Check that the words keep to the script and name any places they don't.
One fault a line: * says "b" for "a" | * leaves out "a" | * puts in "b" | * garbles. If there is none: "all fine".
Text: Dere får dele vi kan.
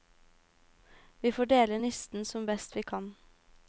* says "Vi" for "Dere"
* puts in "nisten som best"